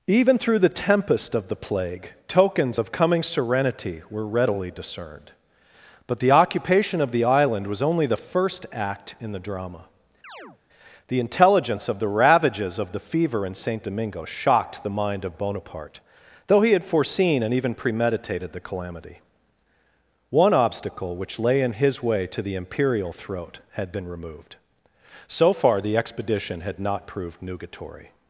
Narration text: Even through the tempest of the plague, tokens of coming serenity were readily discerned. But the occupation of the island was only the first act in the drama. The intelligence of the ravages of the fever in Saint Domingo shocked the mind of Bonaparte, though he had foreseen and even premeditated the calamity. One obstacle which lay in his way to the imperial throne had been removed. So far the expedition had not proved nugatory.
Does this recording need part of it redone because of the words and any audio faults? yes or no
yes